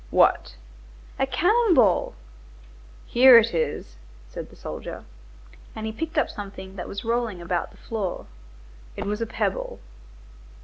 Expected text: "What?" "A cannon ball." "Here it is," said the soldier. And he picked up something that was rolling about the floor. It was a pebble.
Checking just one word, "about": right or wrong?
right